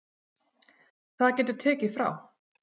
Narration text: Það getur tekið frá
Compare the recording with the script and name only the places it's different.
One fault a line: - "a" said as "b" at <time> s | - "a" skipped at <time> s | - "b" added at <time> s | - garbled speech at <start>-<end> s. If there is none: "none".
none